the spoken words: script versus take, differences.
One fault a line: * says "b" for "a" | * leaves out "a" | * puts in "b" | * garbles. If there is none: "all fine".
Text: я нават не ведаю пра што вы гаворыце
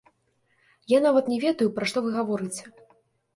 all fine